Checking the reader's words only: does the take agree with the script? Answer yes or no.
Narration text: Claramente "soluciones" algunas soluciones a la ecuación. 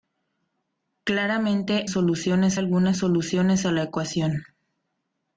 yes